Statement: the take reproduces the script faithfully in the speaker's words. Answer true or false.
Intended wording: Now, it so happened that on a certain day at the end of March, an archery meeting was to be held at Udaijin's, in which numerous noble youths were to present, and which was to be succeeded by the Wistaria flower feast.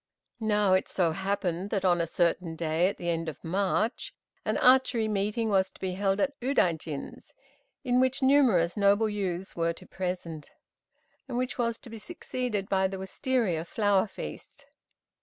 true